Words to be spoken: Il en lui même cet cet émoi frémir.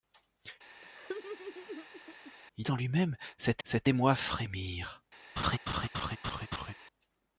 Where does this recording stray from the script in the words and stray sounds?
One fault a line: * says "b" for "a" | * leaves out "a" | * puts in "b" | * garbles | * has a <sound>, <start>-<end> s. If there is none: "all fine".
* has a laugh, 0.8-2.3 s
* has a laugh, 5.4-6.7 s